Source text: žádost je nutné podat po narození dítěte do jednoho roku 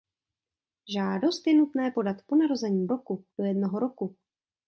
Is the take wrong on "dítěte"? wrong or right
wrong